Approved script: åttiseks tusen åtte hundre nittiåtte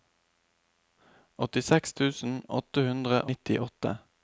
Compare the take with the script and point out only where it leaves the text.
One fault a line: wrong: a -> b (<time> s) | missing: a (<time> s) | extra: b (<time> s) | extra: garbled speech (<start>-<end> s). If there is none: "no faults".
no faults